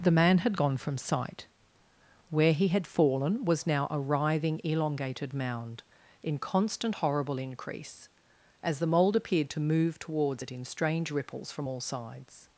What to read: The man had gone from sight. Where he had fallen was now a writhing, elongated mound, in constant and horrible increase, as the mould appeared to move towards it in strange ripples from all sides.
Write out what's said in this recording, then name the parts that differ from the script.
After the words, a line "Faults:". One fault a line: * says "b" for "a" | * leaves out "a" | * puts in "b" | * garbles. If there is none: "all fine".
The man had gone from sight. Where he had fallen was now a writhing, elongated mound, in constant horrible increase, as the mould appeared to move towards it in strange ripples from all sides.
Faults:
* leaves out "and"